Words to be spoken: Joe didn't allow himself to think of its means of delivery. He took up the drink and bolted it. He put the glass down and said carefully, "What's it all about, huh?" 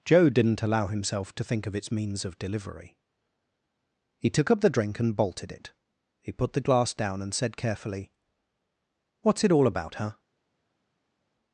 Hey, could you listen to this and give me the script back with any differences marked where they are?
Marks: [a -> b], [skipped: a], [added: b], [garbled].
Joe didn't allow himself to think of its means of delivery. He took up the drink and bolted it. He put the glass down and said carefully, "What's it all about, huh?"